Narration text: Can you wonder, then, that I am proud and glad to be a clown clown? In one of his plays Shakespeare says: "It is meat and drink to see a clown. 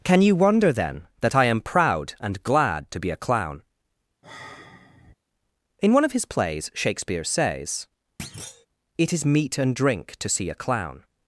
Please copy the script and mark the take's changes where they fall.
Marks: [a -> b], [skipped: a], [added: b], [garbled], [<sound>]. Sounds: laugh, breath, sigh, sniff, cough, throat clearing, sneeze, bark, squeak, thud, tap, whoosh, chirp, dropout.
Can you wonder, then, that I am proud and glad to be a clown [skipped: clown?] [sigh] In one of his plays Shakespeare says: [thud] "It is meat and drink to see a clown.